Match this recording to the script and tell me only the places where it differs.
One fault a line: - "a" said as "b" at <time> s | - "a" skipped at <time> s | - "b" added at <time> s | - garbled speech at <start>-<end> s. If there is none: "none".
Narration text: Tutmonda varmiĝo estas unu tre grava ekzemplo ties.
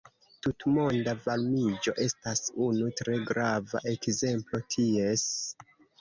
none